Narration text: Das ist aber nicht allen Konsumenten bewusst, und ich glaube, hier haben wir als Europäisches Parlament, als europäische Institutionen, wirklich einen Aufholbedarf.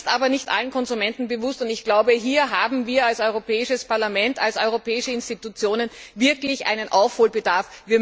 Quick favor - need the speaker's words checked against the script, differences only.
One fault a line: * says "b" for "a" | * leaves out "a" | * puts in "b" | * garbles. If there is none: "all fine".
all fine